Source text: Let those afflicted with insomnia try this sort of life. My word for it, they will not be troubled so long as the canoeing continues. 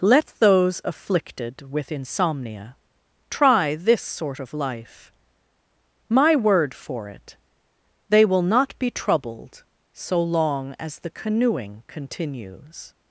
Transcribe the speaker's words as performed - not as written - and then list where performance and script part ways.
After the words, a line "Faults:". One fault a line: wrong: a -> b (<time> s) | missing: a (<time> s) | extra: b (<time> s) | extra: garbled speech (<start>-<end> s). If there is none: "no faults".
Let those afflicted with insomnia try this sort of life. My word for it, they will not be troubled so long as the canoeing continues.
Faults:
no faults